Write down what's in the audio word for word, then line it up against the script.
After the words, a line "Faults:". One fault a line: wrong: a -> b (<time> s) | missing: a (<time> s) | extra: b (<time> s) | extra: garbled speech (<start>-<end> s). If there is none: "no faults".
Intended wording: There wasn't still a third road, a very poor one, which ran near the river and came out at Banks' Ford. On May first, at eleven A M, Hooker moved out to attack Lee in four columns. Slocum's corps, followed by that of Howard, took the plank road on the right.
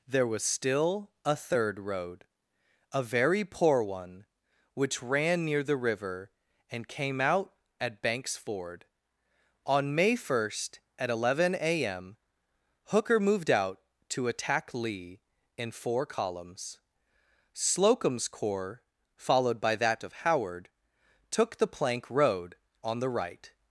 There was still a third road, a very poor one, which ran near the river and came out at Banks' Ford. On May first, at eleven A M, Hooker moved out to attack Lee in four columns. Slocum's corps, followed by that of Howard, took the plank road on the right.
Faults:
wrong: wasn't -> was (0.3 s)